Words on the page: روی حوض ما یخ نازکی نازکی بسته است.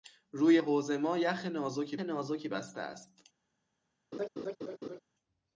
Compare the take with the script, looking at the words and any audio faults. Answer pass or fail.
fail